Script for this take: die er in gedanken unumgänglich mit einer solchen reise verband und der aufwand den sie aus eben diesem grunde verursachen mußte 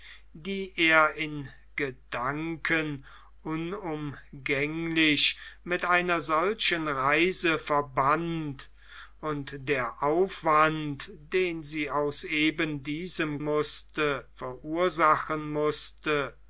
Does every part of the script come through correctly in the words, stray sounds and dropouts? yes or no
no